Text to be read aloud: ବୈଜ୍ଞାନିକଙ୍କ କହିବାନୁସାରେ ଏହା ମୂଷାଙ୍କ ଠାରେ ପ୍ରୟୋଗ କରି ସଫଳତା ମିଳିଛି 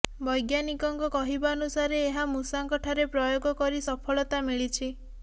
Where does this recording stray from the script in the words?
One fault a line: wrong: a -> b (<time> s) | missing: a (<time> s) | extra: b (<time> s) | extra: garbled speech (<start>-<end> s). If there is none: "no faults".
no faults